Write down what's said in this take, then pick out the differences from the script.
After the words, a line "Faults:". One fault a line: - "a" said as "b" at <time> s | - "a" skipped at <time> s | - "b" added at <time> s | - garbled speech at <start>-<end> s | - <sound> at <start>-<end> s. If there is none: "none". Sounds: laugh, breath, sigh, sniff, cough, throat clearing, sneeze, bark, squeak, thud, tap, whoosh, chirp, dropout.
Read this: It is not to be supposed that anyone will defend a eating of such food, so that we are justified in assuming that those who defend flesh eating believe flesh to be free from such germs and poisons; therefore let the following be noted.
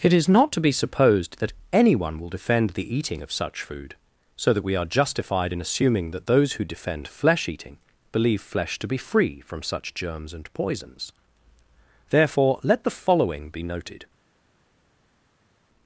It is not to be supposed that anyone will defend the eating of such food, so that we are justified in assuming that those who defend flesh eating believe flesh to be free from such germs and poisons; therefore let the following be noted.
Faults:
- "a" said as "the" at 2.7 s